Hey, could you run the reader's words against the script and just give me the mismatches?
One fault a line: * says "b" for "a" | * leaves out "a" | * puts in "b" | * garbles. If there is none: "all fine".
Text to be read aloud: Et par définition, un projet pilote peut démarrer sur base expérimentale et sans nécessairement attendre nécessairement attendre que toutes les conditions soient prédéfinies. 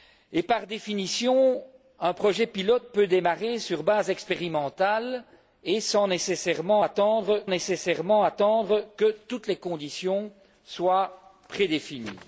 all fine